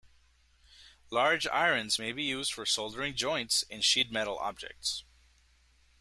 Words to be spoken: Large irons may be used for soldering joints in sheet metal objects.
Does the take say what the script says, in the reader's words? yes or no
yes